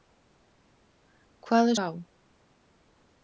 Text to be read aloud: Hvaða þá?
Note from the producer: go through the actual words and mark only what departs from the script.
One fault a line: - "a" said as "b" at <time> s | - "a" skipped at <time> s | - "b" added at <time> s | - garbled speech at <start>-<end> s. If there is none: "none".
none